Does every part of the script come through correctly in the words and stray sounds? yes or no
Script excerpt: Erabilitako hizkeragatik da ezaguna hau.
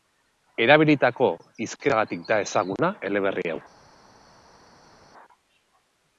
no